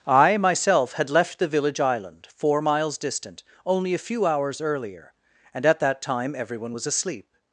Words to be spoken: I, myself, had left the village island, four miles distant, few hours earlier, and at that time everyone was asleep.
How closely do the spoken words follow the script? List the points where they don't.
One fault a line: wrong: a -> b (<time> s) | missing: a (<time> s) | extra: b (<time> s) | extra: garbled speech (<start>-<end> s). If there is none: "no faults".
extra: only a (3.7 s)